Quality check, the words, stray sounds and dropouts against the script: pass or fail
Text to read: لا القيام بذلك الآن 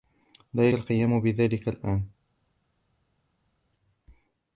pass